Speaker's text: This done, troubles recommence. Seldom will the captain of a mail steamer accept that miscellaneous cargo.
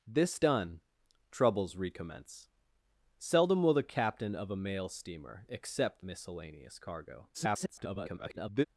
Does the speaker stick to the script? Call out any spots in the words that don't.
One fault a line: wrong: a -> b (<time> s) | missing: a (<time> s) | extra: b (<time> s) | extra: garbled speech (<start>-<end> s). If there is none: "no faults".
missing: that (6.0 s)
extra: garbled speech (7.3-8.6 s)